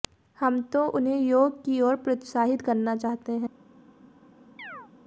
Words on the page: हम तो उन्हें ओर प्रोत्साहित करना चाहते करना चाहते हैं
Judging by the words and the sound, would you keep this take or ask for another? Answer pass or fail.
fail